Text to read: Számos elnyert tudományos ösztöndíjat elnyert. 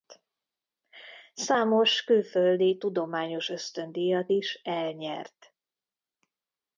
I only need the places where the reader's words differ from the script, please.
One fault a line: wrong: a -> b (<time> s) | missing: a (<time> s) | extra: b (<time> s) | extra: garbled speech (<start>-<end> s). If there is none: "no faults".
wrong: elnyert -> külföldi (2.0 s)
extra: is (4.3 s)